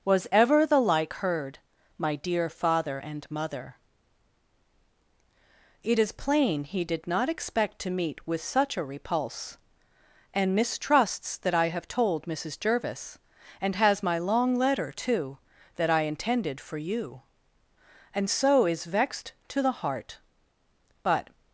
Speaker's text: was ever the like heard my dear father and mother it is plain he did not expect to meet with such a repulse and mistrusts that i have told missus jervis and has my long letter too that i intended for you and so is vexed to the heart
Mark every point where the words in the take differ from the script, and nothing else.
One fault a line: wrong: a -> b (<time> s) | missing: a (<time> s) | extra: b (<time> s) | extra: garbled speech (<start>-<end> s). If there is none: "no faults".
extra: but (21.0 s)